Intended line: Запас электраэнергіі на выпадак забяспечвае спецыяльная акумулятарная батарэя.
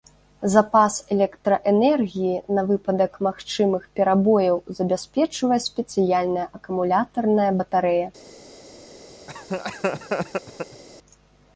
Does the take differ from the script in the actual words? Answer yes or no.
yes